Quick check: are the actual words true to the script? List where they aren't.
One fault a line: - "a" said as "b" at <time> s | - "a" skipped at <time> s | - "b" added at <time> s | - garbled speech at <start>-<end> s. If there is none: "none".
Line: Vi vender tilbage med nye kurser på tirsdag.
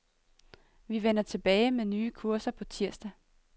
none